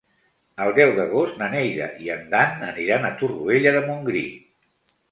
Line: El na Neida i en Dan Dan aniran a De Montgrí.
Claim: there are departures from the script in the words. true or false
true